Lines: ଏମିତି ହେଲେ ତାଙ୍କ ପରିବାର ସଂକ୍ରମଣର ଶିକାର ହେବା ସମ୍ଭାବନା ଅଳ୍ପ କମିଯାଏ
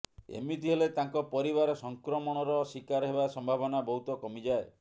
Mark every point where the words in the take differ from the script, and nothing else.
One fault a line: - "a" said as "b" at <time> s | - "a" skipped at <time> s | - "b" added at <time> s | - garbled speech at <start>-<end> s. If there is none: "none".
- "ଅଳ୍ପ" said as "ବହୁତ" at 3.9 s